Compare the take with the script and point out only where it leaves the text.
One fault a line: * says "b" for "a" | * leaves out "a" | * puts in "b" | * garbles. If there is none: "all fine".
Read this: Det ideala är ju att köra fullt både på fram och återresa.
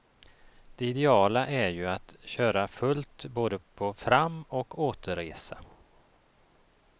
all fine